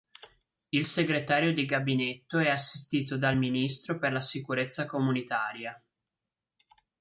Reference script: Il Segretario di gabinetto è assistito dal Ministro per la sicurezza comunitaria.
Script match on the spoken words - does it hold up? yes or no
yes